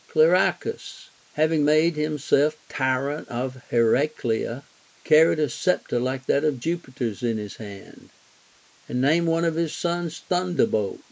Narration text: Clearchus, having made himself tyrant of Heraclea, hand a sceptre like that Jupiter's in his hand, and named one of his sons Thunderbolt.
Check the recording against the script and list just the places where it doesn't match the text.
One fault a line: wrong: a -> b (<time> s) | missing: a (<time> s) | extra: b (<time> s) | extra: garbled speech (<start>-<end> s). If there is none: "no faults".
wrong: hand -> carried (5.0 s)
extra: of (6.4 s)